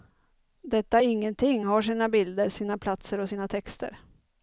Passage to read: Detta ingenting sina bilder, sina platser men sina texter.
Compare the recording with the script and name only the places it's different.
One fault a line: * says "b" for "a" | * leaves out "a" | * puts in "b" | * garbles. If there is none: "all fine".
* puts in "har"
* says "och" for "men"